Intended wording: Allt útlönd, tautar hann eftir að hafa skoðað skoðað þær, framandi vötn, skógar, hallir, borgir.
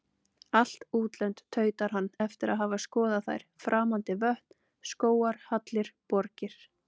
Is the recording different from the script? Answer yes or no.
yes